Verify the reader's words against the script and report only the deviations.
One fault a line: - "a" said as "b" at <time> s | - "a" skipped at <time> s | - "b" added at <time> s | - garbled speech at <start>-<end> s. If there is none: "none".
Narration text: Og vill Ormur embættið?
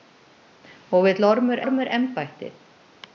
- "Ormur" added at 1.6 s